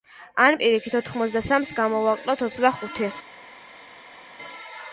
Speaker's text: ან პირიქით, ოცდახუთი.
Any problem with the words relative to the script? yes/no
yes